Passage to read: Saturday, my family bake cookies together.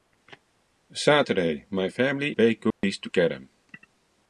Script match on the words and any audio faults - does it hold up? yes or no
no